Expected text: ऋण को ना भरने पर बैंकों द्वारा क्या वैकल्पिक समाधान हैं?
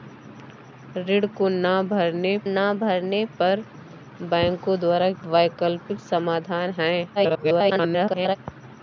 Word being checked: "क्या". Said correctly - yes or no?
no